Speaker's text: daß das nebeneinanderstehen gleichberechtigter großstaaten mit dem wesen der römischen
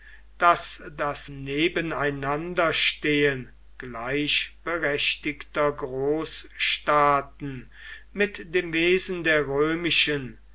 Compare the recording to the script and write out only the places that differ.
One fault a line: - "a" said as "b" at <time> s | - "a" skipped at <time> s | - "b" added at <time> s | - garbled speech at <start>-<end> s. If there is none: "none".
none